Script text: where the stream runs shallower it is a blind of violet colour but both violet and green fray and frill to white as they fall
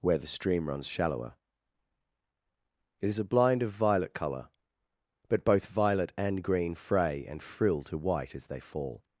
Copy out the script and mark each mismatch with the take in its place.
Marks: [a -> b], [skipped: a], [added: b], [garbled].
where the stream runs shallower it is a blind of violet colour but both violet and green fray and frill to white as they fall